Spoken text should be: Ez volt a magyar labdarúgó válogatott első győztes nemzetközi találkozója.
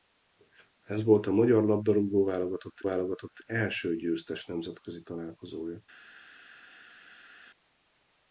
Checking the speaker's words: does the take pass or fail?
fail